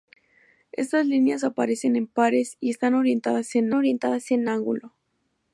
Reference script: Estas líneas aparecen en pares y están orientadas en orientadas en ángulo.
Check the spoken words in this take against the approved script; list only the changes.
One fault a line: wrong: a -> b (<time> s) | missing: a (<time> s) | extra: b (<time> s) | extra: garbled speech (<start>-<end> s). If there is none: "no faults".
no faults